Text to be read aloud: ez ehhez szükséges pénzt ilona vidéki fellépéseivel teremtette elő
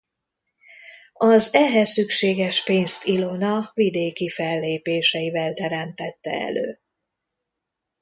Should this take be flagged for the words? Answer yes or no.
yes